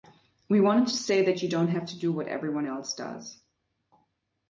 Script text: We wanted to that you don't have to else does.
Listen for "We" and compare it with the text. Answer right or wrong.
right